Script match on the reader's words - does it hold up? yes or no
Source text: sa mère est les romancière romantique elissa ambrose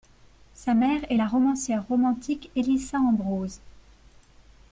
no